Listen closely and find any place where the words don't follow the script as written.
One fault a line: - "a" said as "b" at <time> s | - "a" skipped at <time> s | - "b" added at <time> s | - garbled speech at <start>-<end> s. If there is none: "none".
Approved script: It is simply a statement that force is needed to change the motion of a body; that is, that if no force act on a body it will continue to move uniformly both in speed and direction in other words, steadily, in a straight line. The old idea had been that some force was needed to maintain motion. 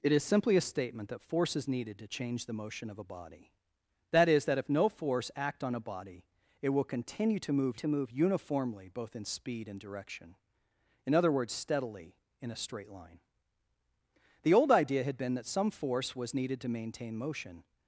- "to move" added at 7.7 s